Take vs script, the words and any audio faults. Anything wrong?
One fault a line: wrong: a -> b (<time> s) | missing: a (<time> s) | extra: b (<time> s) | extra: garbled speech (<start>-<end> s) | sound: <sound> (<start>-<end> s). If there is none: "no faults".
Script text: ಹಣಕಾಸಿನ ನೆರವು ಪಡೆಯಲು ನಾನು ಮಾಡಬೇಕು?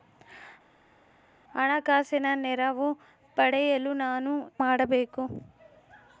no faults